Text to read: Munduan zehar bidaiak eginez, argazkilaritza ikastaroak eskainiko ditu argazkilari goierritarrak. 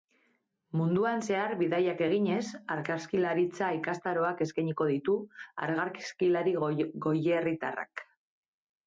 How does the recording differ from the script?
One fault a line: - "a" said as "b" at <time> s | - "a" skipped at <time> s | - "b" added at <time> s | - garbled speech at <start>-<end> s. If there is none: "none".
none